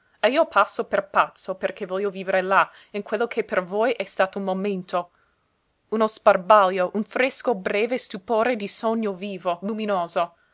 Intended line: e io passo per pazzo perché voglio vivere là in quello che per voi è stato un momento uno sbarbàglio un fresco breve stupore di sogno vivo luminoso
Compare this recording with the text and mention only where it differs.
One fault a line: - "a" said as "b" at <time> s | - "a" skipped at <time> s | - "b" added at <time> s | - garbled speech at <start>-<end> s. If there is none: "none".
none